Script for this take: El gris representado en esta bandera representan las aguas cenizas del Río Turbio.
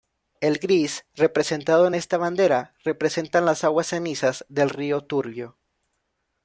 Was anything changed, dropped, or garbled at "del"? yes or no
no